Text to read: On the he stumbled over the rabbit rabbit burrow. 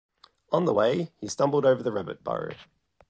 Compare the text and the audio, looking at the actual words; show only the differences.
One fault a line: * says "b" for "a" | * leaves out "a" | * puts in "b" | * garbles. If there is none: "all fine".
* puts in "way"
* leaves out "rabbit"